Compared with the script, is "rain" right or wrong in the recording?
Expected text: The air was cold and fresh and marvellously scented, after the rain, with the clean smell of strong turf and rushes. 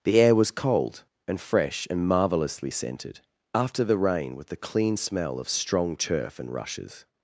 right